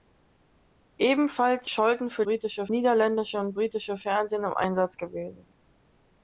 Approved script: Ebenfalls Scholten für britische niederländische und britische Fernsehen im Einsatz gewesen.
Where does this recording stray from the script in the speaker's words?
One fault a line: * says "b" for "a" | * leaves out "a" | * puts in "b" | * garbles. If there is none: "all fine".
all fine